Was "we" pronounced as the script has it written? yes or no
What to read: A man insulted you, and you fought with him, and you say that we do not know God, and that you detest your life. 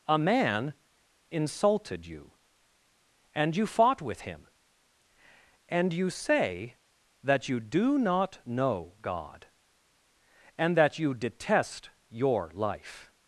no